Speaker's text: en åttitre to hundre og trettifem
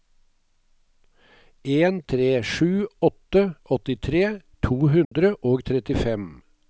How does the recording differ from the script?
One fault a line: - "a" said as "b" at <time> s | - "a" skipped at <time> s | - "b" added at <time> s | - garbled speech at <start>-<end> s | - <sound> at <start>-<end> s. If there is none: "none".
- "tre sju åtte" added at 2.1 s
- dropout at 5.0-5.1 s